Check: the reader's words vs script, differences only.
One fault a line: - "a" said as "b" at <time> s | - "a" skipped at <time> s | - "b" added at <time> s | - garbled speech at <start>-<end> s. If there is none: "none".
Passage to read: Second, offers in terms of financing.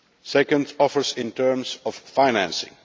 none